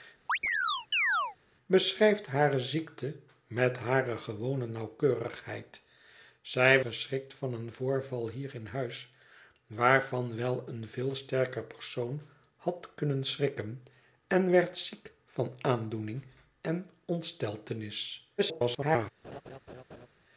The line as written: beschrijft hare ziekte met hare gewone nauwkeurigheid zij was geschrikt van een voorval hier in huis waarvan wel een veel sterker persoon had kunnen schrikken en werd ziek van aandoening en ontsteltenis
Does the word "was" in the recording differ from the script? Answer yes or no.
yes